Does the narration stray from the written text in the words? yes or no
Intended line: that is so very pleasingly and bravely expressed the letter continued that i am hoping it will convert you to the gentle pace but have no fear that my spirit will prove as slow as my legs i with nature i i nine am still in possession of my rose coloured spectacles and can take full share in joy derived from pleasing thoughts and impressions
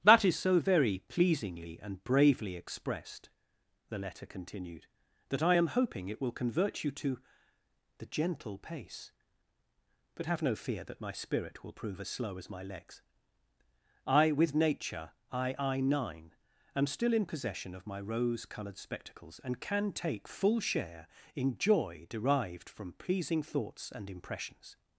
no